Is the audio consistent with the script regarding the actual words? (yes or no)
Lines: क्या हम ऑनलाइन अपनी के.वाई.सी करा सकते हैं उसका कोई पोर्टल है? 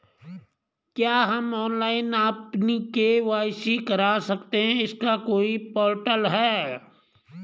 no